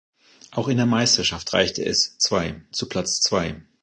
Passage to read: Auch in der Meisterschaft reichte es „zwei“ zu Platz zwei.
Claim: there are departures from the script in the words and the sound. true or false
false